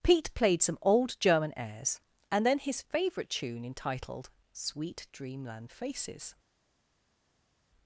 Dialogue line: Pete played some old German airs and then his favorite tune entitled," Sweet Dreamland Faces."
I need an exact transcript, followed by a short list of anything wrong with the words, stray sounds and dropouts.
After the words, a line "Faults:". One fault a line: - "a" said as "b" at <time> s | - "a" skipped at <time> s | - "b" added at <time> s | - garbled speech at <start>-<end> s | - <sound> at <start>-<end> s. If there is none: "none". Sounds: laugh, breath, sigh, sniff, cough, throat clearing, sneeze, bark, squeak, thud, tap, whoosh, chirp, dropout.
Pete played some old German airs and then his favorite tune entitled," Sweet Dreamland Faces."
Faults:
none